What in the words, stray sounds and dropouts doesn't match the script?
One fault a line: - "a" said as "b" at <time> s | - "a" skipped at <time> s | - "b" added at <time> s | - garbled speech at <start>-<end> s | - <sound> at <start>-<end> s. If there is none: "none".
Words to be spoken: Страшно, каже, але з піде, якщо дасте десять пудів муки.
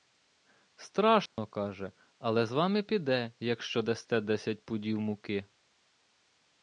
- dropout at 1.3-1.4 s
- "вами" added at 2.5 s